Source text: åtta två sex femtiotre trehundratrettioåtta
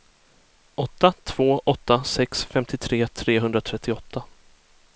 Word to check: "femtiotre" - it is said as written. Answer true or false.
true